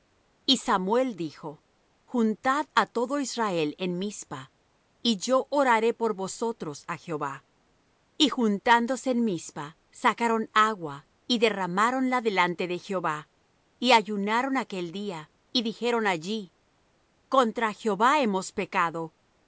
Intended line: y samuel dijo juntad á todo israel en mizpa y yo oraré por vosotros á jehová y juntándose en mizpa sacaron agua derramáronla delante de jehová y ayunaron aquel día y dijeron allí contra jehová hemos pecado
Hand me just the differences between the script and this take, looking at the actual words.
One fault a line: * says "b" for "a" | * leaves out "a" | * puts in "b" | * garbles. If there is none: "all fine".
* puts in "y"